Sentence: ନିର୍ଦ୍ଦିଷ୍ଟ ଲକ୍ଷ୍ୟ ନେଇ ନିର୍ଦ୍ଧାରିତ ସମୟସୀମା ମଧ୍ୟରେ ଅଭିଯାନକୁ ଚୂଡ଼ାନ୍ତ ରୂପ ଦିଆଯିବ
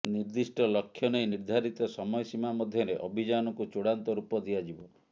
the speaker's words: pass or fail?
pass